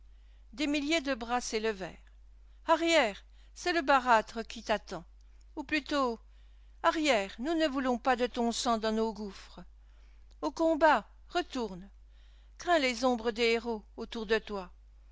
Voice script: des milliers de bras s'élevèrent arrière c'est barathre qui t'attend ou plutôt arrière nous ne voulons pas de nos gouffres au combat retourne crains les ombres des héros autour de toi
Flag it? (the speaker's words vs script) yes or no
yes